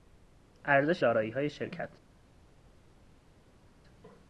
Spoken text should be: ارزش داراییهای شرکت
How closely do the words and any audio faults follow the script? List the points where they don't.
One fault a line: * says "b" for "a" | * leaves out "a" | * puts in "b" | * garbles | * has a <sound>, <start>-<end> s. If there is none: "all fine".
all fine